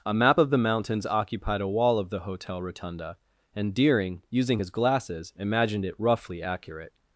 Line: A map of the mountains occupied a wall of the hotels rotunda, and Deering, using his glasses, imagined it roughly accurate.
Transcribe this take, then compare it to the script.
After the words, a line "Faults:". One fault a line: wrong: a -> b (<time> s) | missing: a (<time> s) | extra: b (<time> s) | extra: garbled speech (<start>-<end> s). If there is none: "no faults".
A map of the mountains occupied a wall of the hotel rotunda, and Deering, using his glasses, imagined it roughly accurate.
Faults:
wrong: hotels -> hotel (2.2 s)